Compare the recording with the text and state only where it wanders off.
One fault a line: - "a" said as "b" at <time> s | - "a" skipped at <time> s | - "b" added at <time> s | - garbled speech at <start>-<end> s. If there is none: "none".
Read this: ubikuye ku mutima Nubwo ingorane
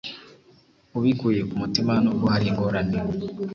- "hari" added at 2.3 s